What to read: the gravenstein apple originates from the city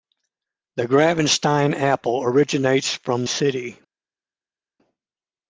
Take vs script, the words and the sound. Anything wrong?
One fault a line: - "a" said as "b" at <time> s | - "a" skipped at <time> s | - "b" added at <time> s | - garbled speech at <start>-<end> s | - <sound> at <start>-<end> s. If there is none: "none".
- "the" skipped at 3.3 s